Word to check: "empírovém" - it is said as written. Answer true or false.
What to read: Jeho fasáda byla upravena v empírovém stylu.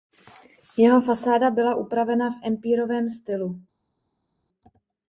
true